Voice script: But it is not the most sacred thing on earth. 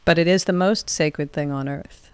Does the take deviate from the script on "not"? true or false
true